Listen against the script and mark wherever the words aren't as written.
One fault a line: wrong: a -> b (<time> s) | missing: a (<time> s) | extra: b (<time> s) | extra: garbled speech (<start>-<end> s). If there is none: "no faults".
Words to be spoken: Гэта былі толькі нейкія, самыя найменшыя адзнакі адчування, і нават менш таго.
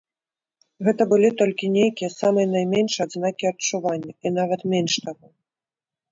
no faults